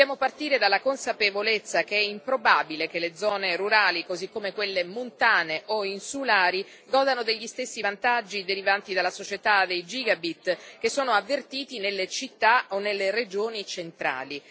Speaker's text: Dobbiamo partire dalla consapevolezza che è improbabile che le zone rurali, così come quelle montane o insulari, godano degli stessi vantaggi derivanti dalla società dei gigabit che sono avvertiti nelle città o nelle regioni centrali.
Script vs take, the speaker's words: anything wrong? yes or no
no